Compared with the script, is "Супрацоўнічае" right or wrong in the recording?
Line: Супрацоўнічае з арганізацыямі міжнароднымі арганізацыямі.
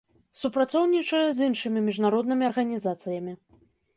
right